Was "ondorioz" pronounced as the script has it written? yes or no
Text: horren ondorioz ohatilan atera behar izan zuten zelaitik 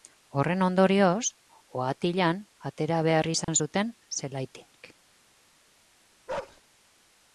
yes